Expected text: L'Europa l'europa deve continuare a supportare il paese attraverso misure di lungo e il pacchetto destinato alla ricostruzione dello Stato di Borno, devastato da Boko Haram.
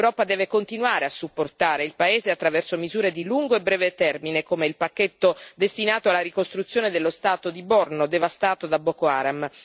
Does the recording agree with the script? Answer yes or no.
no